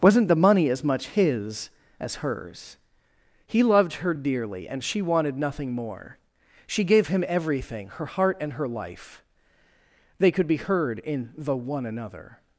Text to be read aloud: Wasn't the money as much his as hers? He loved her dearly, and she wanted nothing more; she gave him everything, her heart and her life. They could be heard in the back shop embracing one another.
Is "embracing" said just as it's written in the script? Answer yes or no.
no